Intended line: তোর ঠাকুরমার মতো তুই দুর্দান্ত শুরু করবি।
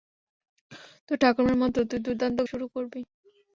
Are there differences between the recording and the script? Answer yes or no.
no